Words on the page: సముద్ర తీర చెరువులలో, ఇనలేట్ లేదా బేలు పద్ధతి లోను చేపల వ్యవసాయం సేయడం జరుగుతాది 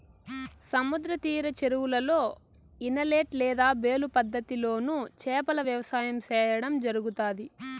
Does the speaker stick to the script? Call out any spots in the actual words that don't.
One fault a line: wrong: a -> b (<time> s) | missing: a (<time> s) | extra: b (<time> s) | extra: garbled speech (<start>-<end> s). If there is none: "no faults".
no faults